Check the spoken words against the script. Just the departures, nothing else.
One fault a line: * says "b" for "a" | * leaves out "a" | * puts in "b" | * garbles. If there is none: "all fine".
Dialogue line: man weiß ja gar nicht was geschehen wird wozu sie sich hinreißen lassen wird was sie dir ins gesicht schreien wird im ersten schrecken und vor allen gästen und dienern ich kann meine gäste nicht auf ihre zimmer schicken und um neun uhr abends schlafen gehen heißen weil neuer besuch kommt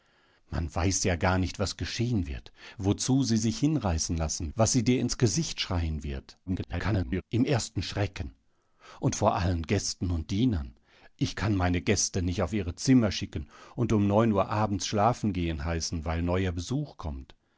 * leaves out "wird"
* garbles